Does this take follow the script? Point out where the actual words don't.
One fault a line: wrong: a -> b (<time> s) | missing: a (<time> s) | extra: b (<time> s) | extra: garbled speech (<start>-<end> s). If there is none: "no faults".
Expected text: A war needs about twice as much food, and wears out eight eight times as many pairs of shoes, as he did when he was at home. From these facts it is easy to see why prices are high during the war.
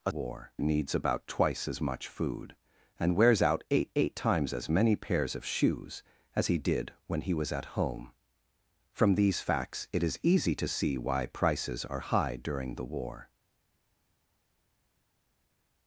no faults